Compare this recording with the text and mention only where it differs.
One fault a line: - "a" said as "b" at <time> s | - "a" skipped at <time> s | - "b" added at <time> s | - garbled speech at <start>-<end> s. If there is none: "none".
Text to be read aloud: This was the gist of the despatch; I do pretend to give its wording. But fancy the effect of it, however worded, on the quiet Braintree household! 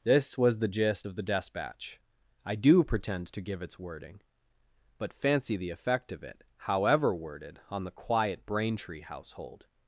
none